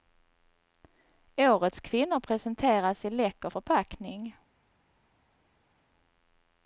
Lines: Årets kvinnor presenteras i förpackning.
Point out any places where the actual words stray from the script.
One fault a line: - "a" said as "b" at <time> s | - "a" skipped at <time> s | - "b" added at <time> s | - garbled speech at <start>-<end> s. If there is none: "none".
- "läcker" added at 3.1 s